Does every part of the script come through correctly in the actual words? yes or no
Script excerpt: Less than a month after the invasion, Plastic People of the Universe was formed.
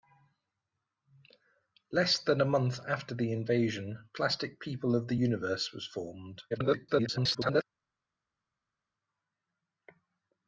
no